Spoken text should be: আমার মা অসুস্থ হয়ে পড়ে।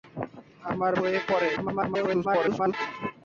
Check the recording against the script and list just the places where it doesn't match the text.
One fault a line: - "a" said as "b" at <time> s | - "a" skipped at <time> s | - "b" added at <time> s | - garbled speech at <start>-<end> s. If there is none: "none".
- "মা অসুস্থ" skipped at 0.9 s
- garbled speech at 1.6-2.7 s